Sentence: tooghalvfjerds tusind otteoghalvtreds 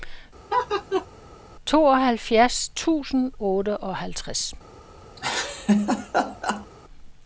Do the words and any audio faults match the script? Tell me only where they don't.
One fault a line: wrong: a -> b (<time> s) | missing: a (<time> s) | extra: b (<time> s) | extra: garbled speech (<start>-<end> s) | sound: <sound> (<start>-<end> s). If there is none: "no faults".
sound: laugh (0.5-1.1 s)
sound: laugh (5.2-6.7 s)